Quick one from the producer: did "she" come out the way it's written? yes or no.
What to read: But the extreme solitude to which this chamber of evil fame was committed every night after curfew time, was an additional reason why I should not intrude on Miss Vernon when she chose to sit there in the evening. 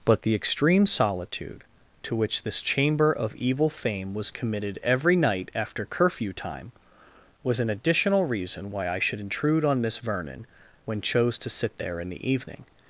no